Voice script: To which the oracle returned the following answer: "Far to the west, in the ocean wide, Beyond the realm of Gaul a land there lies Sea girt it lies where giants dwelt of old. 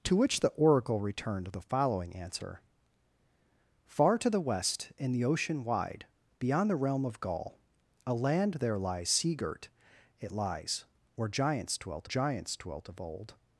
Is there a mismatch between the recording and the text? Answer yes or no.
yes